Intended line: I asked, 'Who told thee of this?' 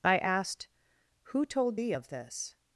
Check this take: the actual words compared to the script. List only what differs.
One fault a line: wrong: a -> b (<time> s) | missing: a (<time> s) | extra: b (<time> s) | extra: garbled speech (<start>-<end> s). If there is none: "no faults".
no faults